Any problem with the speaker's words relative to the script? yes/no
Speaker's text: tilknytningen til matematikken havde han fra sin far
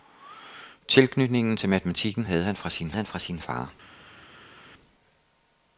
yes